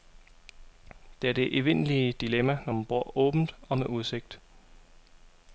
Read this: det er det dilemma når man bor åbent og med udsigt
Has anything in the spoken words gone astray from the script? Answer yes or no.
yes